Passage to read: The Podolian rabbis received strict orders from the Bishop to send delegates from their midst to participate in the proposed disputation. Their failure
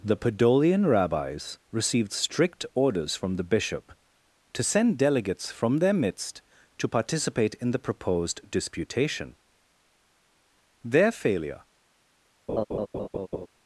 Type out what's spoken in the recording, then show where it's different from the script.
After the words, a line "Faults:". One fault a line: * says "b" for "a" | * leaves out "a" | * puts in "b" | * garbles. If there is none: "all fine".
The Podolian rabbis received strict orders from the Bishop to send delegates from their midst to participate in the proposed disputation. Their failure
Faults:
all fine